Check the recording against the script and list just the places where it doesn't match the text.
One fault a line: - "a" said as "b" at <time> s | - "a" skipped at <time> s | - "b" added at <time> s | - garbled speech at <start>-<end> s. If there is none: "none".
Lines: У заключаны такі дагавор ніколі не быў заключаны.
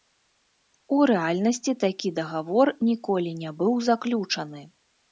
- "заключаны" said as "рэальнасці" at 1.1 s